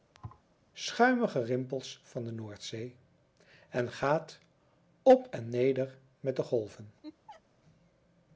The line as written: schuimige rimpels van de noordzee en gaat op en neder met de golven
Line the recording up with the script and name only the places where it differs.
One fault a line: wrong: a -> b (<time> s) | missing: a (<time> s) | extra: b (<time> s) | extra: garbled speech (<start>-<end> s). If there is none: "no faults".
no faults